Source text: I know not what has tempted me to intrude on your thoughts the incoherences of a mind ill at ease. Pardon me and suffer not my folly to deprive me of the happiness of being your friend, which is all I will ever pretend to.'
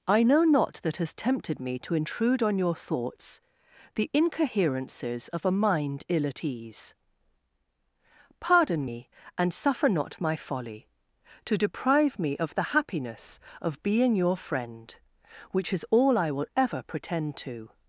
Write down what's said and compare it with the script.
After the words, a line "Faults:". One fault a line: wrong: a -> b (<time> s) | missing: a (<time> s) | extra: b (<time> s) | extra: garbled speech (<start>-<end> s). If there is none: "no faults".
I know not that has tempted me to intrude on your thoughts the incoherences of a mind ill at ease. Pardon me and suffer not my folly to deprive me of the happiness of being your friend, which is all I will ever pretend to.'
Faults:
wrong: what -> that (0.8 s)